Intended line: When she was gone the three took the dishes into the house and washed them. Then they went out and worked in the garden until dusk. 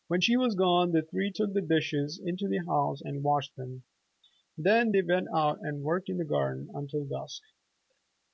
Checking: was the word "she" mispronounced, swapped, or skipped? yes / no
no